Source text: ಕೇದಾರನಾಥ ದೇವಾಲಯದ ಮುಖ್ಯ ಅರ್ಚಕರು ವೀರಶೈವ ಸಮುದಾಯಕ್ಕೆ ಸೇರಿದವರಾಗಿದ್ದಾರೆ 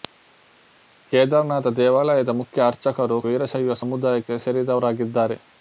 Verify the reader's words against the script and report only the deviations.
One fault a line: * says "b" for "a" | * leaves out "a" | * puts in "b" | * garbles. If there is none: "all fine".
all fine